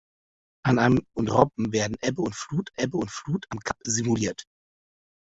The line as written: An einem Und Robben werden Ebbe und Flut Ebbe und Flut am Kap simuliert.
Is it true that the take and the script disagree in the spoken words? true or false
false